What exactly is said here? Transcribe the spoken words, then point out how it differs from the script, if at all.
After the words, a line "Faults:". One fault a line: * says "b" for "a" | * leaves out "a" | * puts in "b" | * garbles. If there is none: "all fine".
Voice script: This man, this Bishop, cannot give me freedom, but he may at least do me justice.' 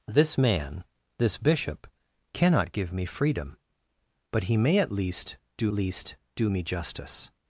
This man, this Bishop, cannot give me freedom, but he may at least do least do me justice.'
Faults:
* puts in "least do"